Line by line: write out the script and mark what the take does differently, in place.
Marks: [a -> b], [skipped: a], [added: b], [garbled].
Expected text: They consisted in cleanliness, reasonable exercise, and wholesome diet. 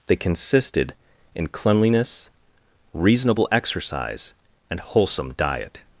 They consisted in cleanliness, reasonable exercise, and wholesome diet.